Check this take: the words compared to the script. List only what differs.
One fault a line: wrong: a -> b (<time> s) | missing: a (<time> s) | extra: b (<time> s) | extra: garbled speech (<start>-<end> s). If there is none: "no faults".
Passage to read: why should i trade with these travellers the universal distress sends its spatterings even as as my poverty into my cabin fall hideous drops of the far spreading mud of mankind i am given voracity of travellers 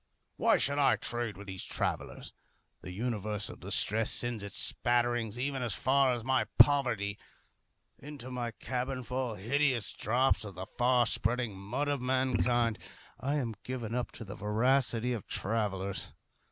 extra: far (5.7 s)
extra: up to the (13.9 s)